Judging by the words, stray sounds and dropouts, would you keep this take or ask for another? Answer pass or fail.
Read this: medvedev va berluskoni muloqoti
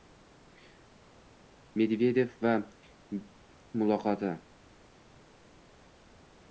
fail